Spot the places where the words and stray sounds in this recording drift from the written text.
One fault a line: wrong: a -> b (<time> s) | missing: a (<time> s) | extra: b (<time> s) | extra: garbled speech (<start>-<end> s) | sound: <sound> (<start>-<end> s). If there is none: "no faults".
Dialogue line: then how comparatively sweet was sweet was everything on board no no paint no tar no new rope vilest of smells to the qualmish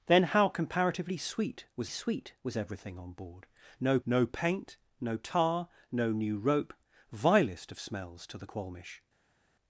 no faults